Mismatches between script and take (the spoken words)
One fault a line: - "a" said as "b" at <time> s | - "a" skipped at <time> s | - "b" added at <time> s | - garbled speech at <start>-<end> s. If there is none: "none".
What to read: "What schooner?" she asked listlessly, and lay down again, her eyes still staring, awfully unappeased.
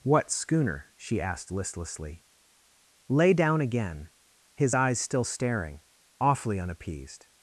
- "and" skipped at 2.2 s
- "her" said as "his" at 4.5 s